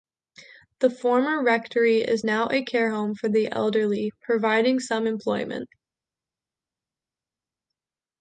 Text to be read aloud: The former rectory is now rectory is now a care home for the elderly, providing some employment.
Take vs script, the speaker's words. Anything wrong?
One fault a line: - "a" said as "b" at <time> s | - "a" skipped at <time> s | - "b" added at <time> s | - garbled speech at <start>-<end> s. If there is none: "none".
- "rectory is now" skipped at 2.5 s